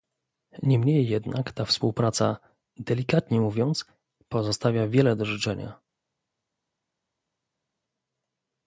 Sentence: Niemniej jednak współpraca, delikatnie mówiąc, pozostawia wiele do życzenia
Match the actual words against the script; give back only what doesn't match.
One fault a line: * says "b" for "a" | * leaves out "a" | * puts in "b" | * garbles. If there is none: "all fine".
* puts in "ta"